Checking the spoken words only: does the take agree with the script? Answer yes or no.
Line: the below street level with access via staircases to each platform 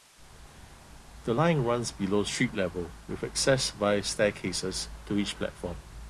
no